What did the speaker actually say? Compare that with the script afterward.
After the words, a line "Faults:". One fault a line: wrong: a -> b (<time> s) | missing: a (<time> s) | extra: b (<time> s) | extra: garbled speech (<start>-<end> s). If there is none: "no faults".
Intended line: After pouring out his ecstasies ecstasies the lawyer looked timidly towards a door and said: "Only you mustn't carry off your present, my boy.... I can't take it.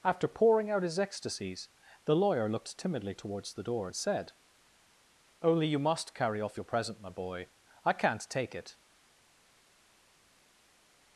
After pouring out his ecstasies the lawyer looked timidly towards the door and said: "Only you must carry off your present, my boy.... I can't take it.
Faults:
missing: ecstasies (1.7 s)
wrong: a -> the (3.5 s)
wrong: mustn't -> must (5.8 s)